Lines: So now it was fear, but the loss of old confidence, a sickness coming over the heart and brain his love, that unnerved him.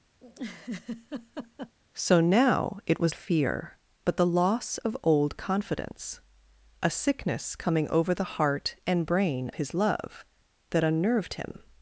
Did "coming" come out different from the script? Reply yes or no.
no